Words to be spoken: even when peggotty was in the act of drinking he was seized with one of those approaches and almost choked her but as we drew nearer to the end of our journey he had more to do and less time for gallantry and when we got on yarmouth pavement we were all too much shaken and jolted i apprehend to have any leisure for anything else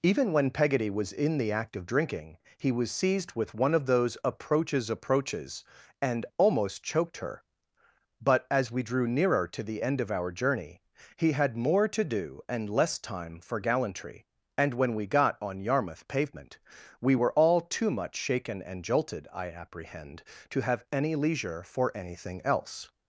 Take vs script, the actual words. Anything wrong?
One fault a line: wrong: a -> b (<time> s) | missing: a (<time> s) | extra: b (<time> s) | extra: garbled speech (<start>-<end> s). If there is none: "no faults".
extra: approaches (4.9 s)